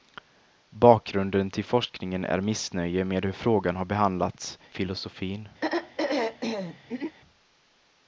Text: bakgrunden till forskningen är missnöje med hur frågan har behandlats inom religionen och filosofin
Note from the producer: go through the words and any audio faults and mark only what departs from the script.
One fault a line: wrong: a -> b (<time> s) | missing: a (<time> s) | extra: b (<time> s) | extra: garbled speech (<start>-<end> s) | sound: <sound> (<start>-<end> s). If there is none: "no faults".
missing: inom religionen och (4.6 s)
sound: throat clearing (5.6-7.2 s)